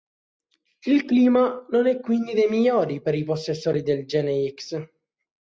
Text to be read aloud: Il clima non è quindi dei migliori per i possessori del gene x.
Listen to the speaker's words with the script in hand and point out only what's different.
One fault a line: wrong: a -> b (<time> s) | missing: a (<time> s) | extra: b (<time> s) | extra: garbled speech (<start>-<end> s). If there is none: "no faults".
no faults